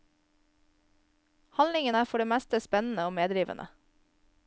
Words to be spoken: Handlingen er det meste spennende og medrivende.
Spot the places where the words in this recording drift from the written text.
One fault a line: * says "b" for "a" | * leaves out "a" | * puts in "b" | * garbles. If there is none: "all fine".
* puts in "for"